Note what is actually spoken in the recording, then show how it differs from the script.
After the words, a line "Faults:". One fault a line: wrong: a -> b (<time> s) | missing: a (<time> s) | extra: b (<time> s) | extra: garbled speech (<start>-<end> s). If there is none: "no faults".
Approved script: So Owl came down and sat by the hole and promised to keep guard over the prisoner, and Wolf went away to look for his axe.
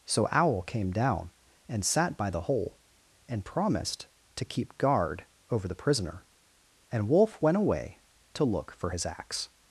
So Owl came down and sat by the hole and promised to keep guard over the prisoner, and Wolf went away to look for his axe.
Faults:
no faults